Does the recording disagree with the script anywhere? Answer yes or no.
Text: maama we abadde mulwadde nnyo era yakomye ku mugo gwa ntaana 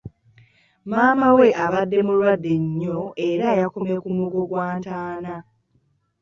no